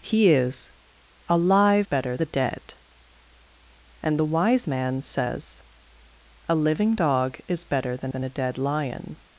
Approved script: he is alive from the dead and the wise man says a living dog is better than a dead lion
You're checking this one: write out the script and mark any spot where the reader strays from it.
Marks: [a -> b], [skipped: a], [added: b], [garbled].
he is alive [from -> better] the dead and the wise man says a living dog is better than [added: than] a dead lion